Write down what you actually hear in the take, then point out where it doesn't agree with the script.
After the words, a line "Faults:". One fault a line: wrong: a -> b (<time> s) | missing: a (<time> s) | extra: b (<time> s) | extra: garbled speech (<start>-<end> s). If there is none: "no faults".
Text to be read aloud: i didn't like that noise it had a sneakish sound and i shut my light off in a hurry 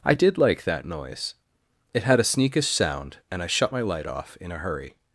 i did like that noise it had a sneakish sound and i shut my light off in a hurry
Faults:
wrong: didn't -> did (0.1 s)